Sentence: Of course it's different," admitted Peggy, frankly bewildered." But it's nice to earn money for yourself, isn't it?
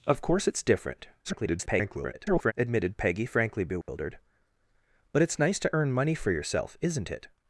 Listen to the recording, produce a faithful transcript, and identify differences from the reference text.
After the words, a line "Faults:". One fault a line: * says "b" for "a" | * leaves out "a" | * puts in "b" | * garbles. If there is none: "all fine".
Of course it's different," [garbled] admitted Peggy, frankly bewildered." But it's nice to earn money for yourself, isn't it?
Faults:
* garbles